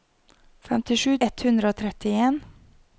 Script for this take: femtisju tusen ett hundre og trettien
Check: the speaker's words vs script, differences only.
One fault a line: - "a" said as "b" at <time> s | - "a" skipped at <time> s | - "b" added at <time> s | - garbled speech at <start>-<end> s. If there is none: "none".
- "tusen" skipped at 1.1 s